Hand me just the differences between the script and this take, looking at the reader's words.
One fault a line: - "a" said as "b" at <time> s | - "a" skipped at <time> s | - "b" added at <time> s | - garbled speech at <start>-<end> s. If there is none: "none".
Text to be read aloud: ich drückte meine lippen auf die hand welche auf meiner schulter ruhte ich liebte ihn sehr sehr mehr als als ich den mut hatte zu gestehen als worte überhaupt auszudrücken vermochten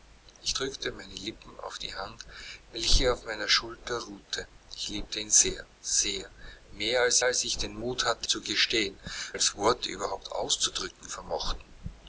none